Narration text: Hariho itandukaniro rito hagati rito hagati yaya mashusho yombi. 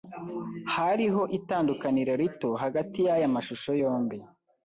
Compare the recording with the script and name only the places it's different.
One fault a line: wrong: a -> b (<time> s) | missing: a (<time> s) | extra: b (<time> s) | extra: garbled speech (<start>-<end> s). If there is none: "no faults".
missing: rito hagati (3.0 s)